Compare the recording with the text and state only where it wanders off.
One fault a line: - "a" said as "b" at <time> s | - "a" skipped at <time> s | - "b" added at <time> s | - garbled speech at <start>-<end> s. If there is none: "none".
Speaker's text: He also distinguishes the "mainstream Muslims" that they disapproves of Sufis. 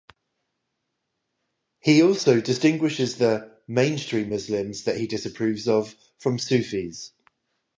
- "they" said as "he" at 5.0 s
- "from" added at 6.2 s